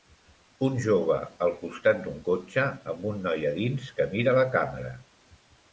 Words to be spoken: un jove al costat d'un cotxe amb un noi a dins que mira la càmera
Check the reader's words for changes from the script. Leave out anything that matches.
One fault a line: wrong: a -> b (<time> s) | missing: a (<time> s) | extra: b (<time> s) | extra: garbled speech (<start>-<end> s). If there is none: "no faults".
no faults